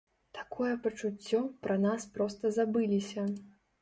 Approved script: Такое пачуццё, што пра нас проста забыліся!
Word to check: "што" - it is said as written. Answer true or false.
false